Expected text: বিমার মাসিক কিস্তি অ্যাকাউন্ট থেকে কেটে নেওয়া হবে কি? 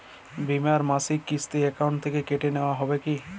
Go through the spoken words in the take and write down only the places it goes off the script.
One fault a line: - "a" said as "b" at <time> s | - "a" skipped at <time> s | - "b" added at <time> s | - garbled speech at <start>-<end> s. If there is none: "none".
none